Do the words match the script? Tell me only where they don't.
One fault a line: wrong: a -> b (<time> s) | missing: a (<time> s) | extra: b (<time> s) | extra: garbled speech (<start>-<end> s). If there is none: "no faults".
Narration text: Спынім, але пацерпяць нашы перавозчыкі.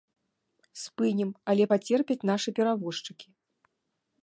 no faults